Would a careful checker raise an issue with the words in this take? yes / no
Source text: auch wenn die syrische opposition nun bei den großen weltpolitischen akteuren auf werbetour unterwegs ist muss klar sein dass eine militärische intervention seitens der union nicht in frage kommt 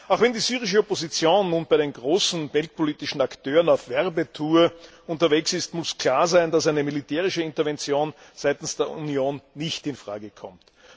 no